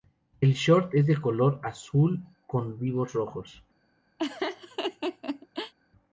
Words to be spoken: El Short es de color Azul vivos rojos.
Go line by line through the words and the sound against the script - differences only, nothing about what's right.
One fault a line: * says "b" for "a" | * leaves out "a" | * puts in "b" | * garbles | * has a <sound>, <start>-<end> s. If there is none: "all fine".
* puts in "con"
* has a laugh, 4.2-5.7 s